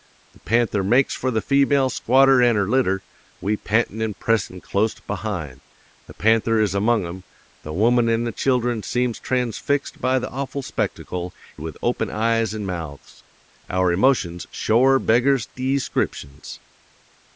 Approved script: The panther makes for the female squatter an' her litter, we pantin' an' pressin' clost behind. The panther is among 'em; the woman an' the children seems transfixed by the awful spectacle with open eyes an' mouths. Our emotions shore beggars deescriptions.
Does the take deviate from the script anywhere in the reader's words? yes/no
no